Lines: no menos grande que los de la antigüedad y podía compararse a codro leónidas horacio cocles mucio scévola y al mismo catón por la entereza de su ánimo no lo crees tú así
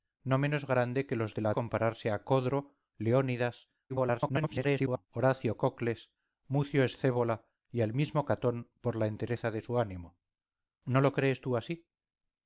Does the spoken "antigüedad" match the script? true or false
false